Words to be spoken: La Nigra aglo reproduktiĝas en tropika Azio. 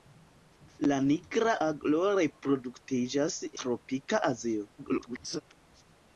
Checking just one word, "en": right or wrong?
wrong